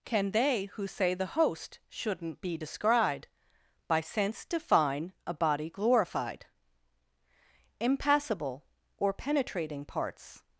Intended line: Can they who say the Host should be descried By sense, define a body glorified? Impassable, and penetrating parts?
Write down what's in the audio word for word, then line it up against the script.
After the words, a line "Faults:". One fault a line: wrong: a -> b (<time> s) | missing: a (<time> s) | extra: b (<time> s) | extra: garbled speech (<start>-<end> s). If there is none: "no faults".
Can they who say the Host shouldn't be descried By sense, define a body glorified? Impassable, or penetrating parts?
Faults:
wrong: should -> shouldn't (1.9 s)
wrong: and -> or (9.0 s)